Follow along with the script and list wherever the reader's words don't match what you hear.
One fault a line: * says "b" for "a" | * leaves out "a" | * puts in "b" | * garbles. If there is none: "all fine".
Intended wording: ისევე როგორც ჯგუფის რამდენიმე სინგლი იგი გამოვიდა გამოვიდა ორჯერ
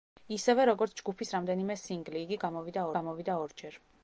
all fine